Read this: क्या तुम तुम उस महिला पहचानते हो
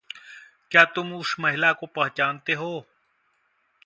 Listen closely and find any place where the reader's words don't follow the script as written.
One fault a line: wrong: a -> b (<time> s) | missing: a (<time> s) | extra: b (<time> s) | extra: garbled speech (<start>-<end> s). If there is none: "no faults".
missing: तुम (1.1 s)
extra: को (1.7 s)